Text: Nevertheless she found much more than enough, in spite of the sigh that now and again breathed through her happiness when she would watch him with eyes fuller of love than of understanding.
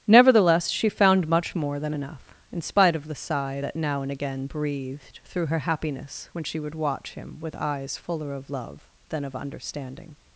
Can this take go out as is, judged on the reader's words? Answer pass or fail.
pass